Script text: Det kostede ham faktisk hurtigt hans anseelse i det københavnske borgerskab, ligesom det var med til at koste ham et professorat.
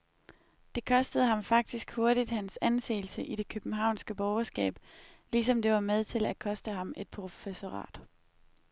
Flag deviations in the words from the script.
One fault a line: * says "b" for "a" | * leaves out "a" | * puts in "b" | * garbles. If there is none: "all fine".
all fine